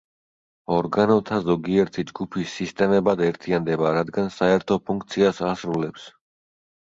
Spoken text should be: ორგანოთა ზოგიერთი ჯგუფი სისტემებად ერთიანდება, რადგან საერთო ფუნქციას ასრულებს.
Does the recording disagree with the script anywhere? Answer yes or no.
no